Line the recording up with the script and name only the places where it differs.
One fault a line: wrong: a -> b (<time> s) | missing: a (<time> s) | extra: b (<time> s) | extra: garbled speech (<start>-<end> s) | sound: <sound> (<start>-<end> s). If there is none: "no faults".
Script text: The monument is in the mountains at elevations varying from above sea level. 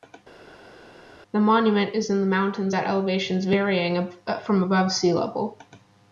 no faults